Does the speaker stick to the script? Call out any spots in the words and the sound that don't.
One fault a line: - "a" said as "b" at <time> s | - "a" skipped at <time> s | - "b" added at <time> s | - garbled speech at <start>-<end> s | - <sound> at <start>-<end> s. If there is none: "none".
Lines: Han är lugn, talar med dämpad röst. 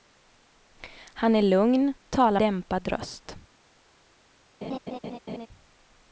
- "med" skipped at 2.4 s
- laugh at 4.6-5.5 s